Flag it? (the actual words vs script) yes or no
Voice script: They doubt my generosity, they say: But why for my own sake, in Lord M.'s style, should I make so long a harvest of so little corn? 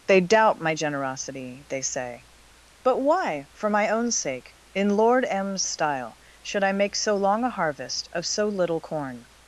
no